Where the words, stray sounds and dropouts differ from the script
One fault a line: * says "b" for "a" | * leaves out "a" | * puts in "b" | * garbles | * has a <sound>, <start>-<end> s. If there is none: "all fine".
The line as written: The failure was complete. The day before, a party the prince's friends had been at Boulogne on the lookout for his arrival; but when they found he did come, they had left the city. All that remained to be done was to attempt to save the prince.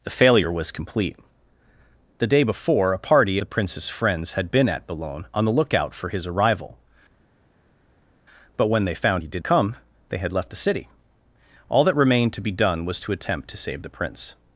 all fine